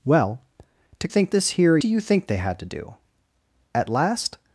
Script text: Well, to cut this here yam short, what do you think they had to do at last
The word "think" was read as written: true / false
true